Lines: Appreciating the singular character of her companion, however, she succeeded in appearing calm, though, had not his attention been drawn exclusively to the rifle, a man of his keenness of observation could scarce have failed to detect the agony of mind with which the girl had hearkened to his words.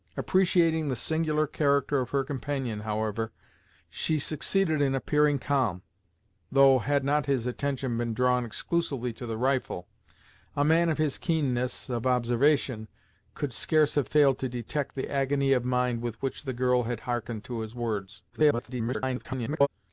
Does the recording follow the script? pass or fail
fail